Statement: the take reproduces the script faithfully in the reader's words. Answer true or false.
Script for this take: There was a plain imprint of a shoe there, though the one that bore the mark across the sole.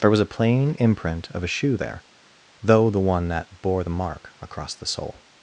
true